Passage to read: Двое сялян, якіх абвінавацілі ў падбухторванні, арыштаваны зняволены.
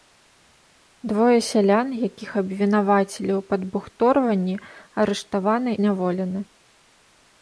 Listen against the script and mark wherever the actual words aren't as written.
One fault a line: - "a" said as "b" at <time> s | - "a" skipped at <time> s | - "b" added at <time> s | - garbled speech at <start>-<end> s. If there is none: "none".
none